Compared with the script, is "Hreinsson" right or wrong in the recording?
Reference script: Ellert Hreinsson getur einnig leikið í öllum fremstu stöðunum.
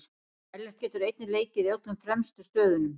wrong